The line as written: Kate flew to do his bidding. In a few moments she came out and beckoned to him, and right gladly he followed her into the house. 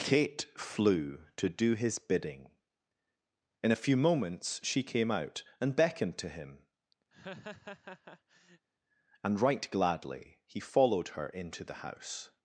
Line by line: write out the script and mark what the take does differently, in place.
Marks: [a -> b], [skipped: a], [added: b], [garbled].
Kate flew to do his bidding. In a few moments she came out and beckoned to him, and right gladly he followed her into the house.